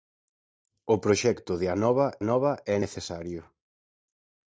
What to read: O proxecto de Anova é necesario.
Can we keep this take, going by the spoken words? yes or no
no